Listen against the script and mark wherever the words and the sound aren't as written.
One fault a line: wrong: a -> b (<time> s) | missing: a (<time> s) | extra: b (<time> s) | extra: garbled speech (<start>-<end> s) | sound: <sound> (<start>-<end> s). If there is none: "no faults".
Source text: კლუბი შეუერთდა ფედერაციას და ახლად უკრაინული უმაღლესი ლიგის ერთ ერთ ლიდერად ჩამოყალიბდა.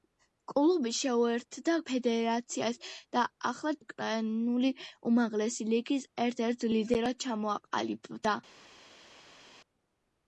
no faults